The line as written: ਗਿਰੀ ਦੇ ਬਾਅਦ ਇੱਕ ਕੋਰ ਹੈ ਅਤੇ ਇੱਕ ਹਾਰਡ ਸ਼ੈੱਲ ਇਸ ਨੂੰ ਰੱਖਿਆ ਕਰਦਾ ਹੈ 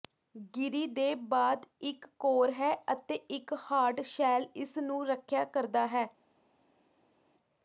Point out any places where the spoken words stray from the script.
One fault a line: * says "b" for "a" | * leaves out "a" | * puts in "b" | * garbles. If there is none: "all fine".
all fine